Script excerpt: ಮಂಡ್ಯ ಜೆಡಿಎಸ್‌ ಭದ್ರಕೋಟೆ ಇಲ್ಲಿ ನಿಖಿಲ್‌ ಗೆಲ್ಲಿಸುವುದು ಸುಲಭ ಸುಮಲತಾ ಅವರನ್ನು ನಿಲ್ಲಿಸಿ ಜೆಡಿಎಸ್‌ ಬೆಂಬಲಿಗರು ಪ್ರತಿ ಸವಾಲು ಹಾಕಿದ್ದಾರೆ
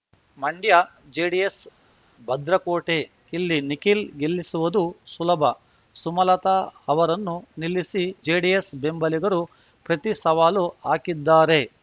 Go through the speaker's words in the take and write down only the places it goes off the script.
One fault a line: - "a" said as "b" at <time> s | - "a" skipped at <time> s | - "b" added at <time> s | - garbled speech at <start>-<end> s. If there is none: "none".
none